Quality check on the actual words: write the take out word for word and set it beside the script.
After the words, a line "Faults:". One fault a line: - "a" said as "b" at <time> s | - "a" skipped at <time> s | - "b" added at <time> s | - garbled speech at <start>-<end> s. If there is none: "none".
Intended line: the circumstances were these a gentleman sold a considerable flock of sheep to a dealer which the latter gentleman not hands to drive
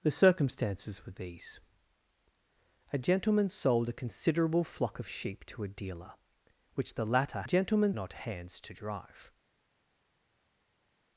the circumstances were these a gentleman sold a considerable flock of sheep to a dealer which the latter gentleman not hands to drive
Faults:
none